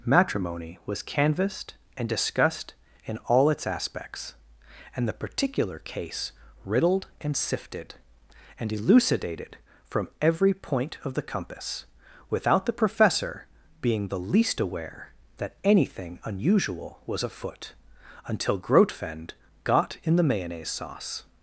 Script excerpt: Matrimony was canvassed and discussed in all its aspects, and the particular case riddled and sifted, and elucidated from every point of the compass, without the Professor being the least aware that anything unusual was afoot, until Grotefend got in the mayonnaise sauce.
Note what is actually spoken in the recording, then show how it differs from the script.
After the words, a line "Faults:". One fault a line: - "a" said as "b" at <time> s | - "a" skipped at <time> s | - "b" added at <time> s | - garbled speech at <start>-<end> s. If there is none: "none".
Matrimony was canvassed and discussed in all its aspects, and the particular case riddled and sifted, and elucidated from every point of the compass, without the Professor being the least aware that anything unusual was afoot, until Grotefend got in the mayonnaise sauce.
Faults:
none